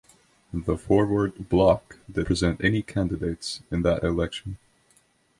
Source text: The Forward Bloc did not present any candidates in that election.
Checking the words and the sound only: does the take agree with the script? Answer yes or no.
no